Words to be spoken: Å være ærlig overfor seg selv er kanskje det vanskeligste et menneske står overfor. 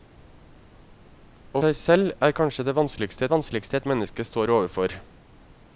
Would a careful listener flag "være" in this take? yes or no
yes